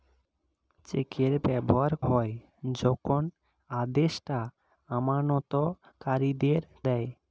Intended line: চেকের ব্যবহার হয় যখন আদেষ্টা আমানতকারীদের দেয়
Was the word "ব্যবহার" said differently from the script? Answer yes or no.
no